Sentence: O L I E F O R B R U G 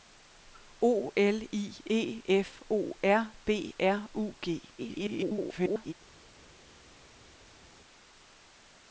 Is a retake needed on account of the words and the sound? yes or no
yes